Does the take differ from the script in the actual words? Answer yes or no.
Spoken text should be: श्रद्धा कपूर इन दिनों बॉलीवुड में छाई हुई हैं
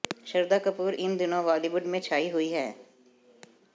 no